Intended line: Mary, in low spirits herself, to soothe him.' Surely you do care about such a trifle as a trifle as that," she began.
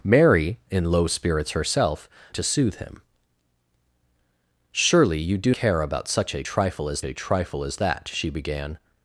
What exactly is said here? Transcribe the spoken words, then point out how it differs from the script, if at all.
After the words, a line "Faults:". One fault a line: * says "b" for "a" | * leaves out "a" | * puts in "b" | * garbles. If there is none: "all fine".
Mary, in low spirits herself, to soothe him.' Surely you do care about such a trifle as a trifle as that," she began.
Faults:
all fine